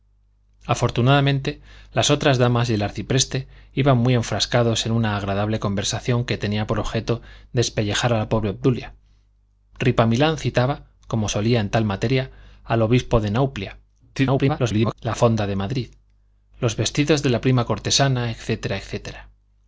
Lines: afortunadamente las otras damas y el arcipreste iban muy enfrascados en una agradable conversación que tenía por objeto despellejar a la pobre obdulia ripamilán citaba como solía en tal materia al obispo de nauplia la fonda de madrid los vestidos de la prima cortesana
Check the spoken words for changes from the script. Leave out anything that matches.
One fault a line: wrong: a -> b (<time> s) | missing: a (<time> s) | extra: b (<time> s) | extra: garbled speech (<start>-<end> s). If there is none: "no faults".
extra: garbled speech (14.1-14.9 s)